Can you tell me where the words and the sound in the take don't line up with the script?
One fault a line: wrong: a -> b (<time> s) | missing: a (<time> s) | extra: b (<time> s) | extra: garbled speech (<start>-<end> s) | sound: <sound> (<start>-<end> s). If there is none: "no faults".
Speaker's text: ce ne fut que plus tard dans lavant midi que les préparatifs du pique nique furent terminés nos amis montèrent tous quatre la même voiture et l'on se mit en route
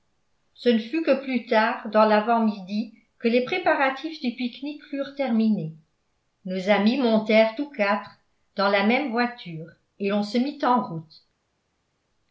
extra: dans (8.5 s)